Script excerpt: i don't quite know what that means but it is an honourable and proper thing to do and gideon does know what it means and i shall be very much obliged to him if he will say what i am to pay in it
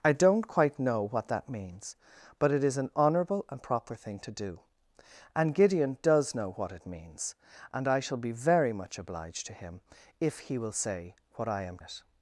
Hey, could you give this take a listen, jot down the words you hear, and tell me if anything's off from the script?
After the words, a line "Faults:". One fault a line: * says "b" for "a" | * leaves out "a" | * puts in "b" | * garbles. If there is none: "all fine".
i don't quite know what that means but it is an honourable and proper thing to do and gideon does know what it means and i shall be very much obliged to him if he will say what i am it
Faults:
* leaves out "to pay in"